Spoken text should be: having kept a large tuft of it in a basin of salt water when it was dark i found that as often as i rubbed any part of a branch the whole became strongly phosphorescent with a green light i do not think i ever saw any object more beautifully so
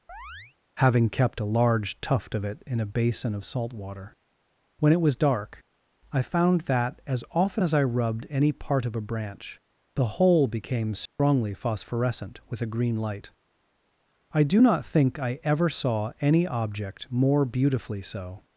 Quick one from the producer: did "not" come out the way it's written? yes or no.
yes